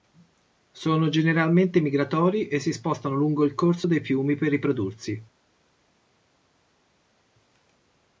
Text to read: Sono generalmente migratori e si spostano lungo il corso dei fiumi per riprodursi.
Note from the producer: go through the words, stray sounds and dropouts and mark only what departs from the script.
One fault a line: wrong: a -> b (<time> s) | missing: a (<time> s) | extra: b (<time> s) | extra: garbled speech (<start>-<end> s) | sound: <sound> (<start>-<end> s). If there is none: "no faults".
no faults